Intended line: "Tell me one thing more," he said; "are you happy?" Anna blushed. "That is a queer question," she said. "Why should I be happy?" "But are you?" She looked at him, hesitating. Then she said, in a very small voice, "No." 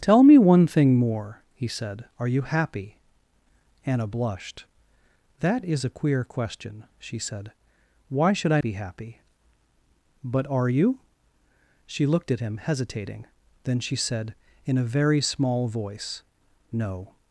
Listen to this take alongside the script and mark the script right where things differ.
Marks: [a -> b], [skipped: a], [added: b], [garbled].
"Tell me one thing more," he said; "are you happy?" Anna blushed. "That is a queer question," she said. "Why should I be happy?" "But are you?" She looked at him, hesitating. Then she said, in a very small voice, "No."